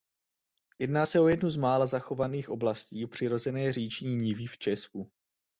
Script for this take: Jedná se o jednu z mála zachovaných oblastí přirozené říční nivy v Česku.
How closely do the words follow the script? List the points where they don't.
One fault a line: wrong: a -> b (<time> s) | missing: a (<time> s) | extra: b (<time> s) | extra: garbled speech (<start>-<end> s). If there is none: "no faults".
no faults